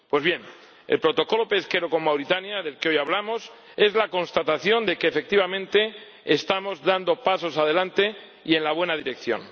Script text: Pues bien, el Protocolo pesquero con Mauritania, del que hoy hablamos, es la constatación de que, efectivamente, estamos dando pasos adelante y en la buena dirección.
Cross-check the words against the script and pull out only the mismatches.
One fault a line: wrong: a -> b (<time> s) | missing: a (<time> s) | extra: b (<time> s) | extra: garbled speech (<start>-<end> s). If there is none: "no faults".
no faults